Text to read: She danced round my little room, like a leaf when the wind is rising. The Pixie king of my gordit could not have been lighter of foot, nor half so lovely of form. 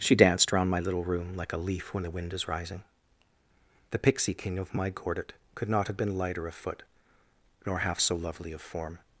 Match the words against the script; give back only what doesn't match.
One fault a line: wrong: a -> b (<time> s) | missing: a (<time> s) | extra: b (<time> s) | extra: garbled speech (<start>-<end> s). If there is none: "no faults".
no faults